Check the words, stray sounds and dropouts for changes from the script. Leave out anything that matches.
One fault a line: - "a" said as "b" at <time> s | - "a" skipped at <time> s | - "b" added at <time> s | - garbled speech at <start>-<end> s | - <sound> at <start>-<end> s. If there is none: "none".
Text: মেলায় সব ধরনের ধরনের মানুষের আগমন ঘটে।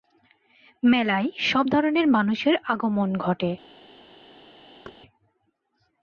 - "ধরনের" skipped at 2.1 s
- thud at 4.8-5.0 s